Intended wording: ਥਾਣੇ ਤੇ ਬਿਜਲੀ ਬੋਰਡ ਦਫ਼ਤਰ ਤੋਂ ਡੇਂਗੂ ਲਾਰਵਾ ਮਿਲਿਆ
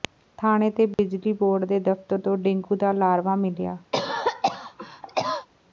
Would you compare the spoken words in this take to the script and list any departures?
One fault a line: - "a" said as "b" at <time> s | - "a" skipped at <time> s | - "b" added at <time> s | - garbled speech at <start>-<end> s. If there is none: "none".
- "ਦੇ" added at 1.6 s
- "ਦਾ" added at 2.8 s